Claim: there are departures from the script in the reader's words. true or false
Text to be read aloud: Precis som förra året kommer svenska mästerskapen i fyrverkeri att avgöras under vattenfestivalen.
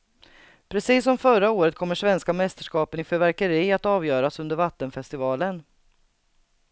false